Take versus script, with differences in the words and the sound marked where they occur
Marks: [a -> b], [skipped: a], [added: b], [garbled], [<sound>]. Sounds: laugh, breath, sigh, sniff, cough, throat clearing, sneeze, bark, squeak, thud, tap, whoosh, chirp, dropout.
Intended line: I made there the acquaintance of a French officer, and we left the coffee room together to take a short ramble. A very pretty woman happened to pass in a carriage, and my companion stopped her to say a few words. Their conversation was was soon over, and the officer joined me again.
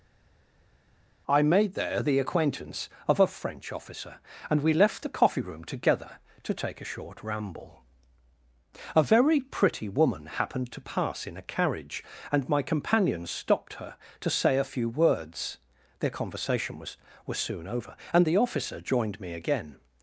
I made there the acquaintance of a French officer, and we left the coffee room together to take a short ramble. A very pretty woman happened to pass in a carriage, and my companion stopped her to say a few words. Their conversation was was soon over, and the officer joined me again.